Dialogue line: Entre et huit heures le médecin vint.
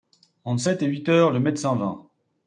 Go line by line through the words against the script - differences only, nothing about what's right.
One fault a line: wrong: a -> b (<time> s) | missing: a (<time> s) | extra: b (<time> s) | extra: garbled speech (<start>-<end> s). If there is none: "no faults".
extra: sept (0.6 s)